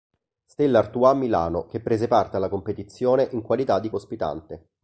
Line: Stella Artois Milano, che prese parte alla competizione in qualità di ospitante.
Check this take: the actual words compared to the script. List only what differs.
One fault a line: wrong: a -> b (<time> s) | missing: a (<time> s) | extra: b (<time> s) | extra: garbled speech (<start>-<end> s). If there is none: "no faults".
no faults